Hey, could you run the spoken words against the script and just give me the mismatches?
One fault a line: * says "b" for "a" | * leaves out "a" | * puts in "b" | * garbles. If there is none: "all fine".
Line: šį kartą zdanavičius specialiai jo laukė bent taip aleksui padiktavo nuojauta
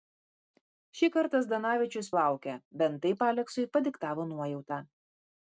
* leaves out "specialiai jo"